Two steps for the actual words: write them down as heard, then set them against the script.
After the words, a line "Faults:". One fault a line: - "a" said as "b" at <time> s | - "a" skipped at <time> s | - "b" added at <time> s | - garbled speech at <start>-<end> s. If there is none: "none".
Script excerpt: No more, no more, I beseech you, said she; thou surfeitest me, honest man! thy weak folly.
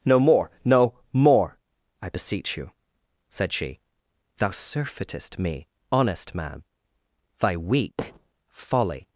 No more, no more, I beseech you, said she; thou surfeitest me, honest man! thy weak folly.
Faults:
none